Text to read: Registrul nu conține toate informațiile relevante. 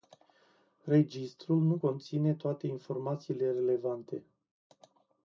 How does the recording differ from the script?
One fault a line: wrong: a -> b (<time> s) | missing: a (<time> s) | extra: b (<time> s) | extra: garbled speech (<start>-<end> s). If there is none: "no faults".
no faults